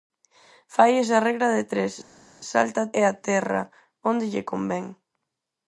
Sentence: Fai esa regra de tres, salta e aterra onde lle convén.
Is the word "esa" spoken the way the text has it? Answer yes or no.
yes